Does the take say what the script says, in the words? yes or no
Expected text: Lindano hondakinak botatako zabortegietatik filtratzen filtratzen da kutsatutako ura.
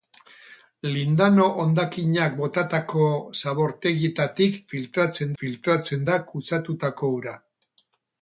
yes